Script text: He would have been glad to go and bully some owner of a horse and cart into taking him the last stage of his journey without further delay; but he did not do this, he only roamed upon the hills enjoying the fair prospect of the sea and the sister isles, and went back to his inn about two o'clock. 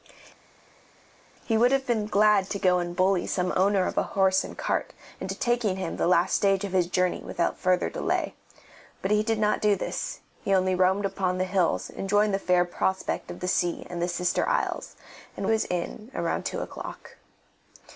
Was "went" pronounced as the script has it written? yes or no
no